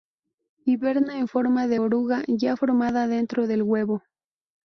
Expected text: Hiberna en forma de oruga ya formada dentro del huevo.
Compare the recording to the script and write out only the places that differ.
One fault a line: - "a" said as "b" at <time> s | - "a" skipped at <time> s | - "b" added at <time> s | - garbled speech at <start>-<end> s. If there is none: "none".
none